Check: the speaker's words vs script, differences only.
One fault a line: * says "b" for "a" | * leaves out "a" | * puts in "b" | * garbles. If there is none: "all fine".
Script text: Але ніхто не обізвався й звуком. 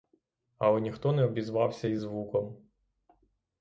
all fine